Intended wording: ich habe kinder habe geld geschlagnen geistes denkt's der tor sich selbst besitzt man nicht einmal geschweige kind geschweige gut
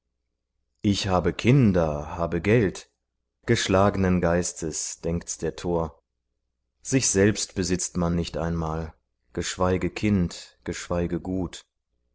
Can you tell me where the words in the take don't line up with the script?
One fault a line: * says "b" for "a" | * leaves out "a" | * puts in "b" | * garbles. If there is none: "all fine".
all fine